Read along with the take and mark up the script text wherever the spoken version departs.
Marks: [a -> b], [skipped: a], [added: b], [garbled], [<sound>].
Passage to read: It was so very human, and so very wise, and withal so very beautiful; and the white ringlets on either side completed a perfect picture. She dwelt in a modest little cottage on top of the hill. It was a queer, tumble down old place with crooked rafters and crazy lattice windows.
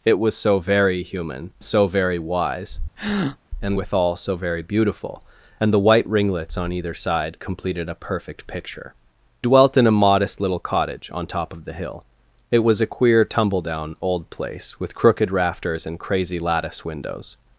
It was so very human, [skipped: and] so very wise, [breath] and withal so very beautiful; and the white ringlets on either side completed a perfect picture. [skipped: She] dwelt in a modest little cottage on top of the hill. It was a queer, tumble down old place with crooked rafters and crazy lattice windows.